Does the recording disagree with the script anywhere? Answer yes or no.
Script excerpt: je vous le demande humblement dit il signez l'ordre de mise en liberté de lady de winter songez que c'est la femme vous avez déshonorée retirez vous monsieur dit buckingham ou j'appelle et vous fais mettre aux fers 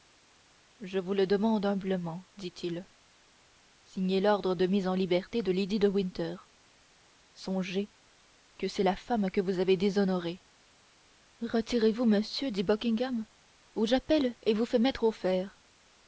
yes